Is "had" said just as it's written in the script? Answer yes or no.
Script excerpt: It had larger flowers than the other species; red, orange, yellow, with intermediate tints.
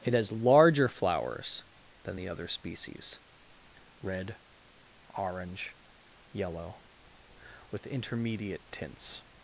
no